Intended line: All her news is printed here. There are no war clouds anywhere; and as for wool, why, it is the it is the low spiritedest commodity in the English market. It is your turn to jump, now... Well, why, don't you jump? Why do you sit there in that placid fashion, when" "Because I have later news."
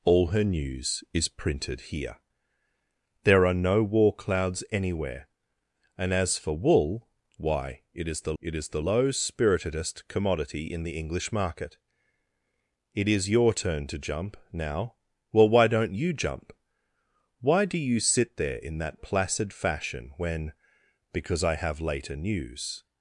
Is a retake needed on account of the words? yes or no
no